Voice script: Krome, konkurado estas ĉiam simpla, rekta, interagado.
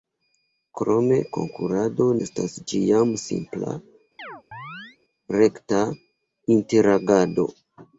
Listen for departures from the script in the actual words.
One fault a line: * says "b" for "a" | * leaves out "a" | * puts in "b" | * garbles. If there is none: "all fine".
all fine